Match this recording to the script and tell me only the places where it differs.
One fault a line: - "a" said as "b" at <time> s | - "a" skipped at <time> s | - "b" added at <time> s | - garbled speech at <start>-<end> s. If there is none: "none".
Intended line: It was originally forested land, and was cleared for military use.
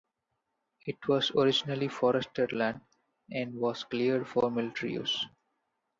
none